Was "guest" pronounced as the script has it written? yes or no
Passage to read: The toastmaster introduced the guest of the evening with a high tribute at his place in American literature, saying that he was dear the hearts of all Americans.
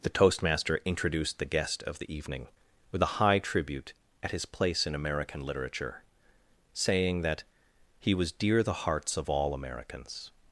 yes